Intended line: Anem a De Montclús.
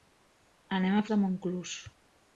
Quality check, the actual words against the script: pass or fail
pass